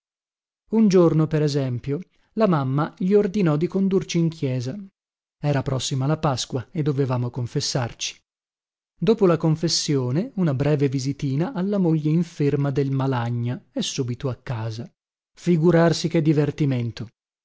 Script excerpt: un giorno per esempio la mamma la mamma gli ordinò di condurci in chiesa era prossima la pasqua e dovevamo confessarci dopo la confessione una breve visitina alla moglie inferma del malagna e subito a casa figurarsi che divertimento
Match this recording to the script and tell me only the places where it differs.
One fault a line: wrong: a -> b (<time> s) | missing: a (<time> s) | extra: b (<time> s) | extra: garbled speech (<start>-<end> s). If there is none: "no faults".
missing: la mamma (2.9 s)